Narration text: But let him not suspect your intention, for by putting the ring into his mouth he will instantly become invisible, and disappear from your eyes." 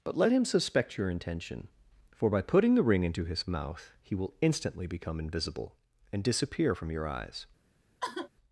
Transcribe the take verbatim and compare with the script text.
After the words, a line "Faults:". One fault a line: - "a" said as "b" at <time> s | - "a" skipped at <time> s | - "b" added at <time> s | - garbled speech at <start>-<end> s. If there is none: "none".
But let him suspect your intention, for by putting the ring into his mouth he will instantly become invisible, and disappear from your eyes."
Faults:
- "not" skipped at 0.5 s